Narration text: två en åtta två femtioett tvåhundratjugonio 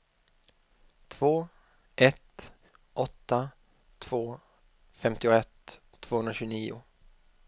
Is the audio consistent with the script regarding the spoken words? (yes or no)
no